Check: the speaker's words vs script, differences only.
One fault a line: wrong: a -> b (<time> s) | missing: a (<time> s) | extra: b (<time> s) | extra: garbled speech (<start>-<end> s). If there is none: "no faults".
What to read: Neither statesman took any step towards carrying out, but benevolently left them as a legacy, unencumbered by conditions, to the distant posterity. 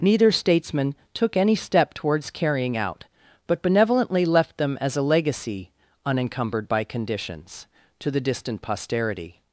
no faults